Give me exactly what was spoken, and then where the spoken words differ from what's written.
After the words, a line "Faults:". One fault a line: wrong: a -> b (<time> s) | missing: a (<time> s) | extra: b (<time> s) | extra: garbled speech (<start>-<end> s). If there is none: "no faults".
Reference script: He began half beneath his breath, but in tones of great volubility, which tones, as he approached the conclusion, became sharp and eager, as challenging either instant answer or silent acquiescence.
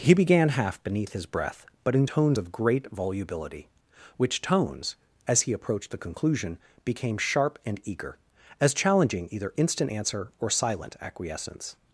He began half beneath his breath, but in tones of great volubility, which tones, as he approached the conclusion, became sharp and eager, as challenging either instant answer or silent acquiescence.
Faults:
no faults